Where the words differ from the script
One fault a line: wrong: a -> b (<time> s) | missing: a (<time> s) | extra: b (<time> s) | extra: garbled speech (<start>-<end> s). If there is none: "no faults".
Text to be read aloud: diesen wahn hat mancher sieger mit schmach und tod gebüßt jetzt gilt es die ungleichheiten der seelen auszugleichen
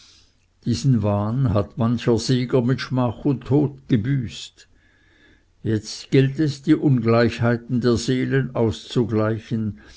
no faults